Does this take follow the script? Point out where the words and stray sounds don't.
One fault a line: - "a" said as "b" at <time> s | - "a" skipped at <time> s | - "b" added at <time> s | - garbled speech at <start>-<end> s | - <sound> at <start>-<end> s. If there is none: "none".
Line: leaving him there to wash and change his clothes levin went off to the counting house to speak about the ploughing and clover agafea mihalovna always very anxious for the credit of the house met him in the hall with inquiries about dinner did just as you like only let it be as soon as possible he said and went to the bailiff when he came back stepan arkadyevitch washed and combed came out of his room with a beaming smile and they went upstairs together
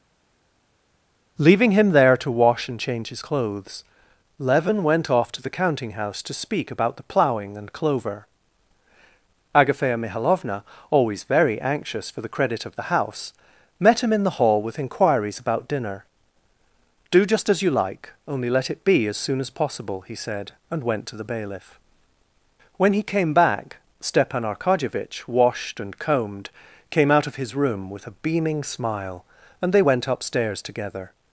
- "did" said as "do" at 17.1 s